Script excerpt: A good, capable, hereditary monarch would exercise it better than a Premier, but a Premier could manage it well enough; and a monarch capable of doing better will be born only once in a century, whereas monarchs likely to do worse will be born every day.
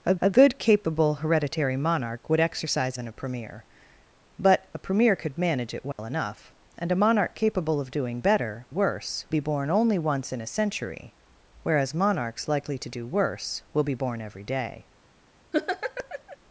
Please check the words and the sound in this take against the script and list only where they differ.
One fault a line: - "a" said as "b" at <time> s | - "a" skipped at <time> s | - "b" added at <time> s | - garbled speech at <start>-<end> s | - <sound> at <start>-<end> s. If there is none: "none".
- "a" added at 0.2 s
- "it better" skipped at 3.0 s
- dropout at 5.9-6.0 s
- "will" said as "worse" at 8.7 s
- laugh at 15.5-16.4 s